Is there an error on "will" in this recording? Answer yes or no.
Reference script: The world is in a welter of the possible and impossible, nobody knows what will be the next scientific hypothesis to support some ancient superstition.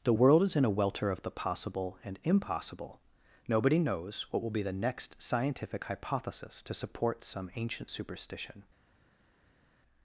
no